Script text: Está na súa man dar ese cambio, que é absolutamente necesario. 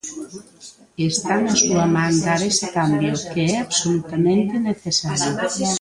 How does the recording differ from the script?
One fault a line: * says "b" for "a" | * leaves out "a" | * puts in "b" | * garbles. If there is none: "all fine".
all fine